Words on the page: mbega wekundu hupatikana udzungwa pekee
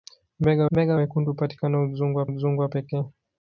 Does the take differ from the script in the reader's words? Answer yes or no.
yes